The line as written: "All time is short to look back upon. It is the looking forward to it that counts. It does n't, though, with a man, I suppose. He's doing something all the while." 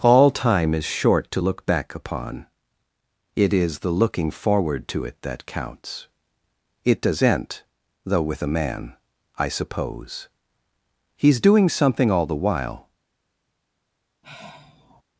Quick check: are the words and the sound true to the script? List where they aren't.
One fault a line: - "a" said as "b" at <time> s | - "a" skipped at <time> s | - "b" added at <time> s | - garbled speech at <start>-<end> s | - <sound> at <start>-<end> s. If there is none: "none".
- "n't" said as "end" at 7.2 s
- sigh at 14.2-15.0 s